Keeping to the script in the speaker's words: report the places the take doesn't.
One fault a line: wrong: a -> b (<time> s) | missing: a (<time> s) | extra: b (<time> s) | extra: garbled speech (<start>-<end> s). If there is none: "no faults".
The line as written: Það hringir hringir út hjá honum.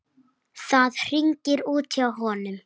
missing: hringir (1.6 s)